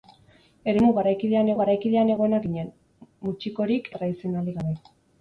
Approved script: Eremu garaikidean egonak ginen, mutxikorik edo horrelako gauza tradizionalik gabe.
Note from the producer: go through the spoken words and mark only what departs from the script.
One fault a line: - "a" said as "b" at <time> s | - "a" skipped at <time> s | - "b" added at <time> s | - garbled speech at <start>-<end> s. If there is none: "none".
- "garaikidean" added at 1.6 s
- "edo horrelako gauza" skipped at 3.9 s